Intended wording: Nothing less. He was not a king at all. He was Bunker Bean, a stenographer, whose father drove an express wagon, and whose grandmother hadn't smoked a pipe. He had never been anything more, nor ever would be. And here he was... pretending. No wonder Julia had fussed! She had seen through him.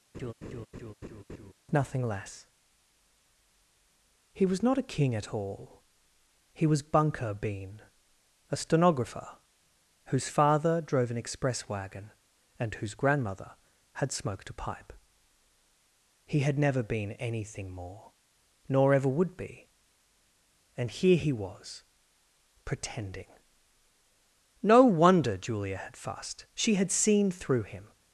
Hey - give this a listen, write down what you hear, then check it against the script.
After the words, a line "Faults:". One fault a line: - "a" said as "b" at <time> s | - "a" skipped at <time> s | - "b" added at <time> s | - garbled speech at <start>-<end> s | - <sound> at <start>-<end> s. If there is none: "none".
Nothing less. He was not a king at all. He was Bunker Bean, a stenographer, whose father drove an express wagon, and whose grandmother had smoked a pipe. He had never been anything more, nor ever would be. And here he was... pretending. No wonder Julia had fussed! She had seen through him.
Faults:
- laugh at 0.1-1.5 s
- "hadn't" said as "had" at 13.9 s